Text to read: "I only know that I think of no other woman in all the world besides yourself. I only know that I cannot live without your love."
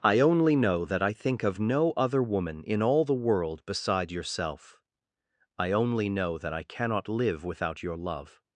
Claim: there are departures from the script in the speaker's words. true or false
true